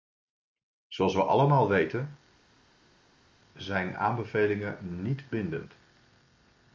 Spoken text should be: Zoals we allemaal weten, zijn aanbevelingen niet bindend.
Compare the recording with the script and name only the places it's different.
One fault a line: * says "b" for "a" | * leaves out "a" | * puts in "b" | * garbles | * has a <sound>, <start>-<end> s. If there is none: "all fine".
all fine